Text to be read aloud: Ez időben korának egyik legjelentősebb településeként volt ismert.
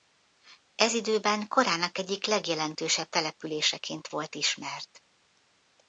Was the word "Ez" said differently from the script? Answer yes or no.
no